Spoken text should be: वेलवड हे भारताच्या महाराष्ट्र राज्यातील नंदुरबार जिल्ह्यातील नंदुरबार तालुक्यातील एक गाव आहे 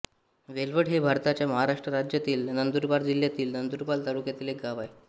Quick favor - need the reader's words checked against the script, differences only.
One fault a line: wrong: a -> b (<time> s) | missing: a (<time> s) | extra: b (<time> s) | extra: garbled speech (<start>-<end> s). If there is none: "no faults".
no faults